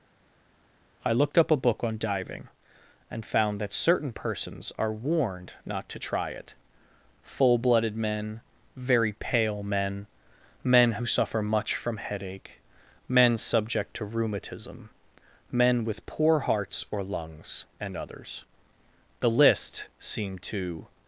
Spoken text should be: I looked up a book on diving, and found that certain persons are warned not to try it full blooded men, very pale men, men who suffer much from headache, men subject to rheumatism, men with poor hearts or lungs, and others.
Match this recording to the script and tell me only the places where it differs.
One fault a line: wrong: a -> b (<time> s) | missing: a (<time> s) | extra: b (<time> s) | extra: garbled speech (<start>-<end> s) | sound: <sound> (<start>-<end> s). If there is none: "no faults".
extra: The list seemed to (19.2 s)